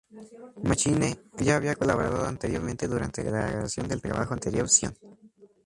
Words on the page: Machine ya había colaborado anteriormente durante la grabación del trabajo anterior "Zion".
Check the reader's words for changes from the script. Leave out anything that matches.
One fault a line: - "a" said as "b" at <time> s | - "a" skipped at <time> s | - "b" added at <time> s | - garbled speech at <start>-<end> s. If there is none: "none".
none